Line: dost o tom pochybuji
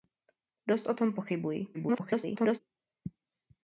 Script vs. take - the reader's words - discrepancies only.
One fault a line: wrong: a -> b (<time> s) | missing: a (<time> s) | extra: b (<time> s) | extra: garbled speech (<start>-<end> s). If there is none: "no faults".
extra: garbled speech (1.7-2.6 s)